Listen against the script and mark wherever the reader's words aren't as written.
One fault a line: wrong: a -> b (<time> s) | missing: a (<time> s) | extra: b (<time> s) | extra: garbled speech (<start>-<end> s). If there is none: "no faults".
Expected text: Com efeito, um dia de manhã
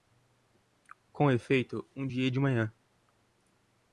no faults